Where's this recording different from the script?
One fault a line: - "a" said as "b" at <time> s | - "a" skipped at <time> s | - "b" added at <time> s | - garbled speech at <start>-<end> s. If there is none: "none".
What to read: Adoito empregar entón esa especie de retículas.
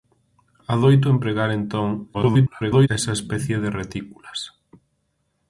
- garbled speech at 2.1-2.9 s